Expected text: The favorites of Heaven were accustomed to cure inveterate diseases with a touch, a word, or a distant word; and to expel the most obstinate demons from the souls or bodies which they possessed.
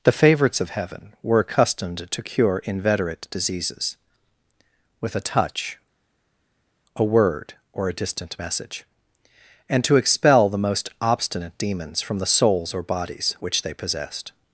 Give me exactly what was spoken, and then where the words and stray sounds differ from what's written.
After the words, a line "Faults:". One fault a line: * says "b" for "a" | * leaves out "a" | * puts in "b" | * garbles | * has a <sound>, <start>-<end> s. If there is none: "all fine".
The favorites of Heaven were accustomed to cure inveterate diseases with a touch, a word, or a distant message; and to expel the most obstinate demons from the souls or bodies which they possessed.
Faults:
* says "message" for "word"